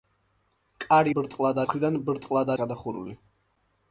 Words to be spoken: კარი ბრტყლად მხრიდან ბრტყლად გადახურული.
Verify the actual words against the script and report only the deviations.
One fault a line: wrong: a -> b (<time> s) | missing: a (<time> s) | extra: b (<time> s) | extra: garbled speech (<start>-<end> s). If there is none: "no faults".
no faults